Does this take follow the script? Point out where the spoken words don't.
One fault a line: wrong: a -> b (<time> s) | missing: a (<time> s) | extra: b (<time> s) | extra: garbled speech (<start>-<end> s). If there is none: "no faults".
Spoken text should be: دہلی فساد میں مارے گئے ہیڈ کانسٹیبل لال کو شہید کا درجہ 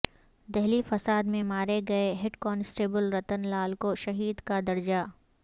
extra: رتن (3.1 s)